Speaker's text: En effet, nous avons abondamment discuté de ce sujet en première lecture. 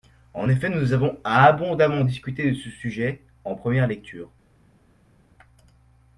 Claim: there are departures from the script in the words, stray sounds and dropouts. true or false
false